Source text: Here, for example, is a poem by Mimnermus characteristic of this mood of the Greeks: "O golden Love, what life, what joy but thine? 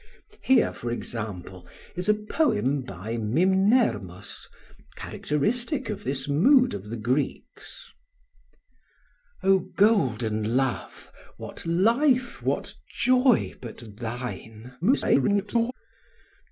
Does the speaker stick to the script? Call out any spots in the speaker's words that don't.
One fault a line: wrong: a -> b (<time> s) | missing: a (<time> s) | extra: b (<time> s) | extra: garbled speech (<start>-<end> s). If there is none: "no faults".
extra: garbled speech (14.8-15.7 s)